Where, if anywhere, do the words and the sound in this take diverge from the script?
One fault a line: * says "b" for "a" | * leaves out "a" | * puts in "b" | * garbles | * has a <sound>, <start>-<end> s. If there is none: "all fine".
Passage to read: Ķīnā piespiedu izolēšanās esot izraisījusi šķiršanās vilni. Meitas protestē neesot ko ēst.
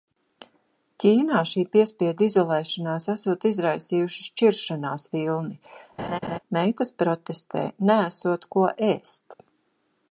* puts in "šī"
* has a laugh, 6.0-6.4 s